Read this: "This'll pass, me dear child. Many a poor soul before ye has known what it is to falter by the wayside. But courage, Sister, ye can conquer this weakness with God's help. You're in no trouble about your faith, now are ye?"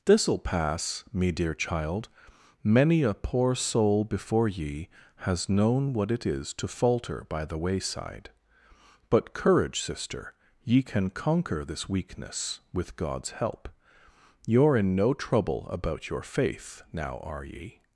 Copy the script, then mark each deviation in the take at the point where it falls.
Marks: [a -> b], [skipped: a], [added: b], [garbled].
"This'll pass, me dear child. Many a poor soul before ye has known what it is to falter by the wayside. But courage, Sister, ye can conquer this weakness with God's help. You're in no trouble about your faith, now are ye?"